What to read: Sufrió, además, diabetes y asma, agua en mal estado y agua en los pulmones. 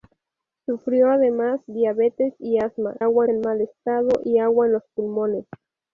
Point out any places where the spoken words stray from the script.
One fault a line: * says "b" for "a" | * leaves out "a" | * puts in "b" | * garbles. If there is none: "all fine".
all fine